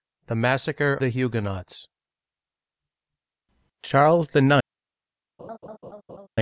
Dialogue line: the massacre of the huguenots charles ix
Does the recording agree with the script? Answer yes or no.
no